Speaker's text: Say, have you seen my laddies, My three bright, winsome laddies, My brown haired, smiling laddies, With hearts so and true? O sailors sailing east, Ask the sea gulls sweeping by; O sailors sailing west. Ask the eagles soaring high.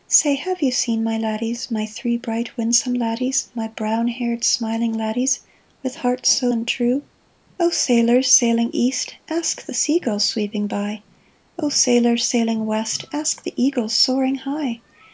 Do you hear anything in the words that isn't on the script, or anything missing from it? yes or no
no